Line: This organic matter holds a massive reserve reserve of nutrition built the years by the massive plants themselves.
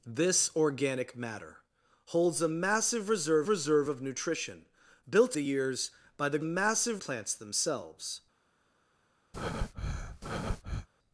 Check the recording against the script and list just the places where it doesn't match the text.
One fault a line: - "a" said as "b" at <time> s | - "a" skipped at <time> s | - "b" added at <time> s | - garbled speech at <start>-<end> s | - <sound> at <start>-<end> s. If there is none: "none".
- breath at 9.3-10.9 s